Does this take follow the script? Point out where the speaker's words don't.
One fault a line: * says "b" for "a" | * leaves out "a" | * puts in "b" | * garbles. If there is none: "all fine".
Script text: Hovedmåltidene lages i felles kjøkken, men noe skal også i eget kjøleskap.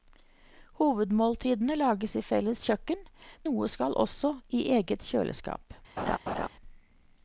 * leaves out "men"